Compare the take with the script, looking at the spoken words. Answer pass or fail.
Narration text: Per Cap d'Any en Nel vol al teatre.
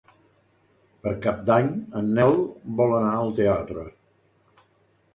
fail